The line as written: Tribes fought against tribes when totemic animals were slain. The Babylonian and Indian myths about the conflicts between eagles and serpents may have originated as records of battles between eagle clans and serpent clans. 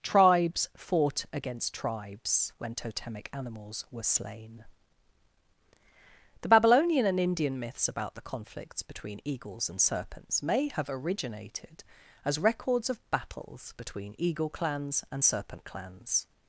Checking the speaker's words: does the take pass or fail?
pass